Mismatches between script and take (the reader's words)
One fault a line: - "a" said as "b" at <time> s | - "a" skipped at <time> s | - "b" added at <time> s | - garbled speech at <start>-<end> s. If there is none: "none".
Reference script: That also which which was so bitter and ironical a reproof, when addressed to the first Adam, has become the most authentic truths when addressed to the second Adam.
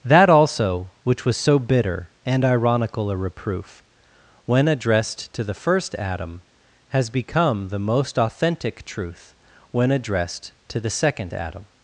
- "which" skipped at 1.2 s
- "truths" said as "truth" at 8.8 s